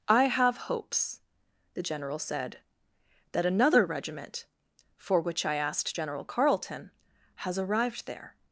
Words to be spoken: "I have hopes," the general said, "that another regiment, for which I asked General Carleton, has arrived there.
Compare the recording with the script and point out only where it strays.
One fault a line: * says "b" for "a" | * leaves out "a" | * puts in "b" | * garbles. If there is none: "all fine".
all fine